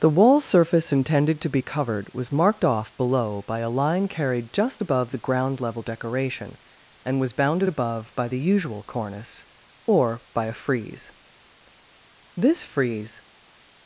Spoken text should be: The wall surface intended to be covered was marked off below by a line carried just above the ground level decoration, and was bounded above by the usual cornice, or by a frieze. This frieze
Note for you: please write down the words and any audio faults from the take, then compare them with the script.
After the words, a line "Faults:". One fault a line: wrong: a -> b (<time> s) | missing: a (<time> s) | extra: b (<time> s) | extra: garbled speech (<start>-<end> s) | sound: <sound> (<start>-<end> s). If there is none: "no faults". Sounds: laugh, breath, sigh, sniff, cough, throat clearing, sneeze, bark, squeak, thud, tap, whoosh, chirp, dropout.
The wall surface intended to be covered was marked off below by a line carried just above the ground level decoration, and was bounded above by the usual cornice, or by a frieze. This frieze
Faults:
no faults